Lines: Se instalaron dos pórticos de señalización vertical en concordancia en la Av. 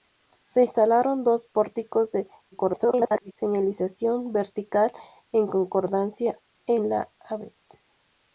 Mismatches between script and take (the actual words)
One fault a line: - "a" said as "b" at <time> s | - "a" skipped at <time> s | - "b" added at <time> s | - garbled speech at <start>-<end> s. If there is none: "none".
- garbled speech at 2.5-3.3 s